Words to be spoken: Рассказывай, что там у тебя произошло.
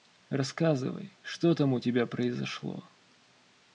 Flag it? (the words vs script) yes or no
no